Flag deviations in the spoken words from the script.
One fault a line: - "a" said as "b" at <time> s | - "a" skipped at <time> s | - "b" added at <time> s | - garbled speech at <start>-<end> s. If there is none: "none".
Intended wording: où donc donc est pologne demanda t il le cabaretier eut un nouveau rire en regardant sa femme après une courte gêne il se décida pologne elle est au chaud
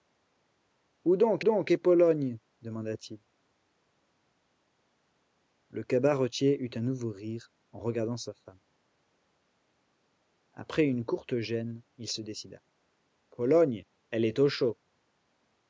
none